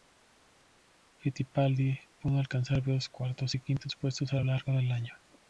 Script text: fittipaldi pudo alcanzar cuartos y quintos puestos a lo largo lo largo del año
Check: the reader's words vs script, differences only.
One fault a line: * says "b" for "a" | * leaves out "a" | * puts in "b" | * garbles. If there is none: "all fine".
* puts in "varios"
* leaves out "lo largo"